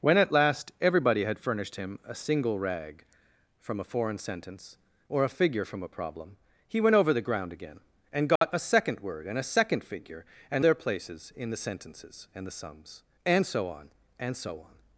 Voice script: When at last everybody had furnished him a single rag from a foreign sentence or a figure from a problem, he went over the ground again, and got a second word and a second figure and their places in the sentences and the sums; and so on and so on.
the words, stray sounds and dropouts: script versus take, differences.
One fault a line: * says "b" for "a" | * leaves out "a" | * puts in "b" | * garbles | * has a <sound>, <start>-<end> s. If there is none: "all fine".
* has a dropout, 8.4-8.4 s